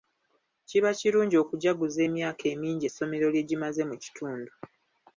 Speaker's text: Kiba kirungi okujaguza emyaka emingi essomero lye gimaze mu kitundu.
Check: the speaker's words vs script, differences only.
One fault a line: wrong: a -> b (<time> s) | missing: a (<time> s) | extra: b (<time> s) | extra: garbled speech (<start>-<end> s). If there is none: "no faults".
no faults